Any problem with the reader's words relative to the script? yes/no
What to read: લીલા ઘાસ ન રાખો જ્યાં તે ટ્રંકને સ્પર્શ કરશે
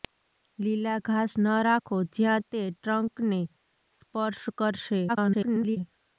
yes